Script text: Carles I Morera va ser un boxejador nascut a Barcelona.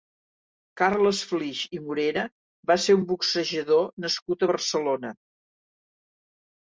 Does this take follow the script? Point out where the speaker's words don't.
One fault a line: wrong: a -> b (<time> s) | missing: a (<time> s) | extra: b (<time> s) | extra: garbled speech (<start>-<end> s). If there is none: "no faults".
extra: Flix (1.3 s)